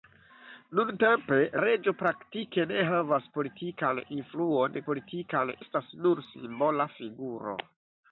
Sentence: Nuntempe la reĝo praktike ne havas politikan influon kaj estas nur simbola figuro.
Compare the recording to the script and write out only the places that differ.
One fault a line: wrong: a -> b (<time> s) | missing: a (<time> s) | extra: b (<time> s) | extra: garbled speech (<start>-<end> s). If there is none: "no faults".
missing: la (1.4 s)
wrong: kaj -> politikan (4.9 s)